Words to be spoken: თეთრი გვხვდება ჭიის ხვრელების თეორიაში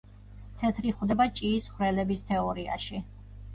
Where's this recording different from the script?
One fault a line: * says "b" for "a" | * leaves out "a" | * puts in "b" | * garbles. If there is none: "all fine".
all fine